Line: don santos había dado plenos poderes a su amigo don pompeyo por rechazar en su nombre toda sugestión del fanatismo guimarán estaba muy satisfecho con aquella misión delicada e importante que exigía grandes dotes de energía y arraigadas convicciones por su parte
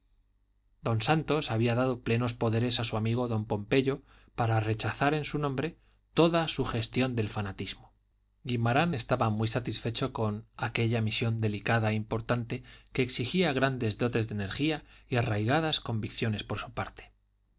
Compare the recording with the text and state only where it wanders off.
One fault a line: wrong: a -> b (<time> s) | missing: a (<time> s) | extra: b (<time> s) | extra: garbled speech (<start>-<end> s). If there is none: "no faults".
wrong: por -> para (4.4 s)